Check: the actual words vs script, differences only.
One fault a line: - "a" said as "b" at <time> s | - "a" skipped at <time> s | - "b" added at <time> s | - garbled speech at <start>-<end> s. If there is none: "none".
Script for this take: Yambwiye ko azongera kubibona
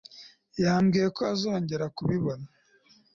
none